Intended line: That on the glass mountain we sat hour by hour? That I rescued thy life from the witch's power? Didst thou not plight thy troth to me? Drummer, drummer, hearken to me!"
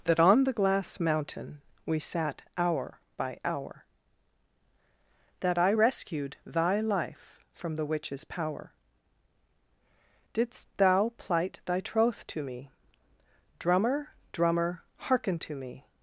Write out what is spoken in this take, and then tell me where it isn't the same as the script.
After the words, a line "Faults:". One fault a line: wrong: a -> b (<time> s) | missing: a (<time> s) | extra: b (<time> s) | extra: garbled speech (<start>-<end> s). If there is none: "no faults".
That on the glass mountain we sat hour by hour? That I rescued thy life from the witch's power? Didst thou plight thy troth to me? Drummer, drummer, hearken to me!"
Faults:
missing: not (11.1 s)